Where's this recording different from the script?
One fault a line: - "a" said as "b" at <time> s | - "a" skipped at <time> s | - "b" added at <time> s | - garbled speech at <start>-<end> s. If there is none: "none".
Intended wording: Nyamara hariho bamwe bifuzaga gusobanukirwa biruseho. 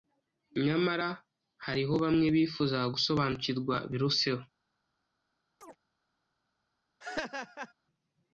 none